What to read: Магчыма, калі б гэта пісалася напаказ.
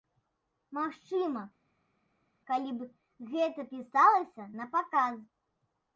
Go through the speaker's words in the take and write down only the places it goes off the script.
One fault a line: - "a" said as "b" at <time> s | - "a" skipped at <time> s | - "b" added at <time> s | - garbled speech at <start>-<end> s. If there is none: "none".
none